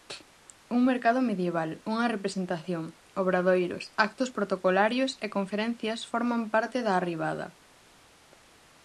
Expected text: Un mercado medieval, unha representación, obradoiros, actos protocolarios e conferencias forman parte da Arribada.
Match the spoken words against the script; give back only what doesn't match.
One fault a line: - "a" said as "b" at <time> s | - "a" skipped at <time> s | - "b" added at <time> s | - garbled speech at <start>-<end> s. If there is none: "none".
none